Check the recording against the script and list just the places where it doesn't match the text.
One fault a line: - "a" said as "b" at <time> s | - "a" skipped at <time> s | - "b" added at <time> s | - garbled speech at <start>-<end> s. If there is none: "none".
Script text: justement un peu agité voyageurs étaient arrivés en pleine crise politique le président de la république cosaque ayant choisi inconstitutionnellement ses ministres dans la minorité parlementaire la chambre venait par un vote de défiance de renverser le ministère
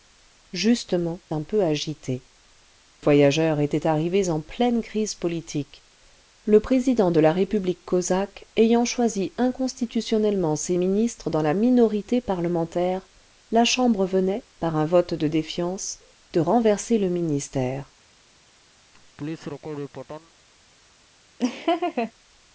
none